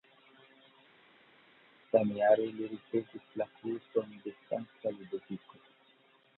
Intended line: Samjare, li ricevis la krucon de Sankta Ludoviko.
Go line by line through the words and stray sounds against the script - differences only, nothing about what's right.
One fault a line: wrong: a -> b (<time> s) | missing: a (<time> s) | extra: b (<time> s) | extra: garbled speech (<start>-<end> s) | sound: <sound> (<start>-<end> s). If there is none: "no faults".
no faults